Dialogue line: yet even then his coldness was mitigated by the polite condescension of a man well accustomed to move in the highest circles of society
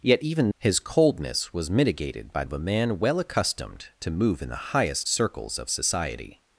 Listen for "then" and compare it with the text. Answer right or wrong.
wrong